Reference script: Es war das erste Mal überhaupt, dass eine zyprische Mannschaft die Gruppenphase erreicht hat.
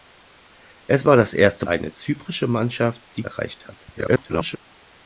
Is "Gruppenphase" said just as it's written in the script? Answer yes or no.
no